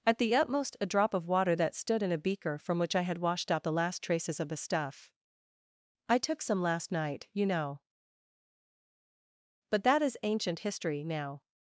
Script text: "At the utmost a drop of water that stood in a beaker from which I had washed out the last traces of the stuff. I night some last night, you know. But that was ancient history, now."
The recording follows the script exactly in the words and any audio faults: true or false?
false